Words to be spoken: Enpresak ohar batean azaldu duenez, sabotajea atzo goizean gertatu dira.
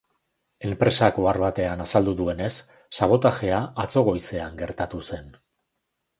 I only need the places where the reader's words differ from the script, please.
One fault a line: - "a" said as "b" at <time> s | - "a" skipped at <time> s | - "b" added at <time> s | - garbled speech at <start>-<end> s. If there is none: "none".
- "dira" said as "zen" at 5.1 s